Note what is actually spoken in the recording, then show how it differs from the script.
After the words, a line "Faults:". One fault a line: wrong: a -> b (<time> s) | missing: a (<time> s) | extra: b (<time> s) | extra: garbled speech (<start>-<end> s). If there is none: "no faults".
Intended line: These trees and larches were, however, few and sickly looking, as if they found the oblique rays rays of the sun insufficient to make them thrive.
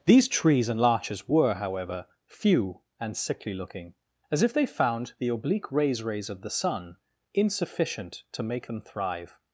These trees and larches were, however, few and sickly looking, as if they found the oblique rays rays of the sun insufficient to make them thrive.
Faults:
no faults